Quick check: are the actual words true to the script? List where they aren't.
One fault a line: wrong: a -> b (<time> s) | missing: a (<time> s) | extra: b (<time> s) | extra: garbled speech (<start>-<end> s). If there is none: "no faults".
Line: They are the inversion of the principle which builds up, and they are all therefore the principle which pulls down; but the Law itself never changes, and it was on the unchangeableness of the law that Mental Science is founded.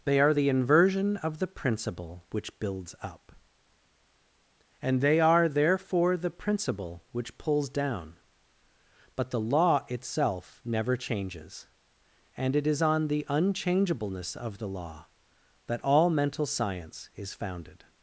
missing: all (5.5 s)
wrong: was -> is (12.6 s)
extra: all (15.8 s)